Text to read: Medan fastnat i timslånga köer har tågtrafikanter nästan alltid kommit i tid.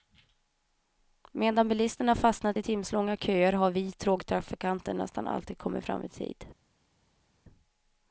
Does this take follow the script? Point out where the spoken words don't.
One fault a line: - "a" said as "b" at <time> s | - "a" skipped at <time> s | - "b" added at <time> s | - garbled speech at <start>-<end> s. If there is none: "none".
- "bilisterna" added at 1.7 s
- "vi" added at 3.7 s
- "fram" added at 5.8 s